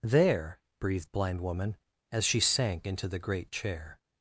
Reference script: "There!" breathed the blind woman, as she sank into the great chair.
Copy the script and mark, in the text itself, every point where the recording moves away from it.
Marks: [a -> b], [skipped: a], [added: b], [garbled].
"There!" breathed [skipped: the] blind woman, as she sank into the great chair.